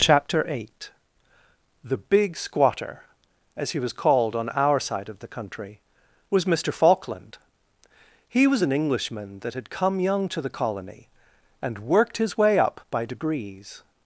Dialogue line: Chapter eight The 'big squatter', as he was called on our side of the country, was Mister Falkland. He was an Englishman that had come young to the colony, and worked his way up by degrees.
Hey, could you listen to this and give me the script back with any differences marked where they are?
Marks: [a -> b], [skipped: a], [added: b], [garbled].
Chapter eight The 'big squatter', as he was called on our side of the country, was Mister Falkland. He was an Englishman that had come young to the colony, and worked his way up by degrees.